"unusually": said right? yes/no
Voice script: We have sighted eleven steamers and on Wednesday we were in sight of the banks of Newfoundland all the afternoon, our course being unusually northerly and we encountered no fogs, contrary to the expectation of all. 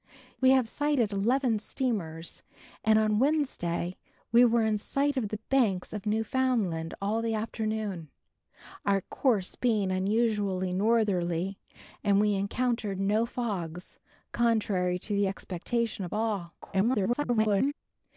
yes